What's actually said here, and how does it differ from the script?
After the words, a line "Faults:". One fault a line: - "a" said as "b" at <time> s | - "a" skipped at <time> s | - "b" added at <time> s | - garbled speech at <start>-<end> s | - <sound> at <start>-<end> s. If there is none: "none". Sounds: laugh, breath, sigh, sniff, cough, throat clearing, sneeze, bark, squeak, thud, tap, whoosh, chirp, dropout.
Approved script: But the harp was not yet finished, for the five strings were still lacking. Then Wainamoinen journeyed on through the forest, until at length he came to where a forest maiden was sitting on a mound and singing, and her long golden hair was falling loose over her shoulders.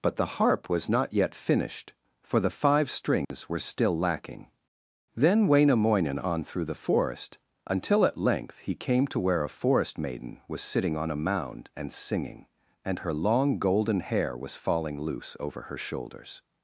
But the harp was not yet finished, for the five strings were still lacking. Then Wainamoinen on through the forest, until at length he came to where a forest maiden was sitting on a mound and singing, and her long golden hair was falling loose over her shoulders.
Faults:
- dropout at 3.2-3.3 s
- "journeyed" skipped at 6.2 s